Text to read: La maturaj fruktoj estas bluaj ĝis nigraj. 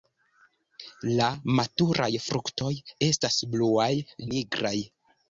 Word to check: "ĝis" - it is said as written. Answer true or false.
false